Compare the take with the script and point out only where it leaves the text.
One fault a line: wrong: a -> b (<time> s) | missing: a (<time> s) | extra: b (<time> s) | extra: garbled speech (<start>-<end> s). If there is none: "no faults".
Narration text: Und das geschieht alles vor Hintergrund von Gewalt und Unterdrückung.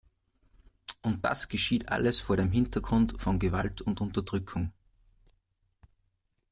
extra: dem (2.4 s)